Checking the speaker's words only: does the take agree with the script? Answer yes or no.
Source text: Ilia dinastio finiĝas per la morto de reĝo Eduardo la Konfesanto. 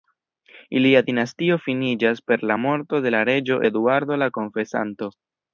no